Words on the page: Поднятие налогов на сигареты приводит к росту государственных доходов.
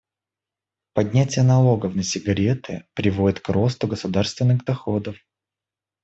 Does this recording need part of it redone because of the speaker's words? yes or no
no